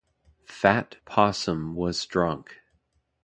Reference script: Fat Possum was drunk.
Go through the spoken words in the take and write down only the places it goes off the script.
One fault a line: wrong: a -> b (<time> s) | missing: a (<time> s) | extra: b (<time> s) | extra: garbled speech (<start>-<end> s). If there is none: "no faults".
no faults